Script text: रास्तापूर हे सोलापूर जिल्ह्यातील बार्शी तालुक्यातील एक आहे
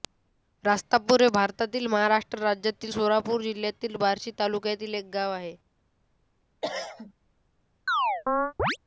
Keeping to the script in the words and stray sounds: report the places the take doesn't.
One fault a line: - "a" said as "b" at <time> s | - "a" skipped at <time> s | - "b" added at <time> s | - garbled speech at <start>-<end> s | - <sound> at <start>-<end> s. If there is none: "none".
- "भारतातील महाराष्ट्र राज्यातील" added at 1.3 s
- "गाव" added at 5.1 s
- cough at 6.6-7.1 s
- chirp at 7.9-8.8 s